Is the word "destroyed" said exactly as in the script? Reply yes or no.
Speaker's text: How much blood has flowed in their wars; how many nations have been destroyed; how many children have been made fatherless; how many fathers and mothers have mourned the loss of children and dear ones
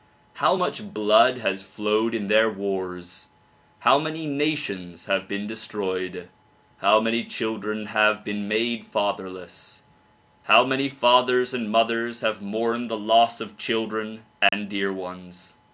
yes